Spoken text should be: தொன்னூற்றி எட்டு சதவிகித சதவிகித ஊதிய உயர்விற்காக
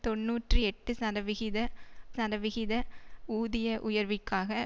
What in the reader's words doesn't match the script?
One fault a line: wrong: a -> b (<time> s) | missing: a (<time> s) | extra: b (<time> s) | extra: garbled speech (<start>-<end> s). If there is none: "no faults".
no faults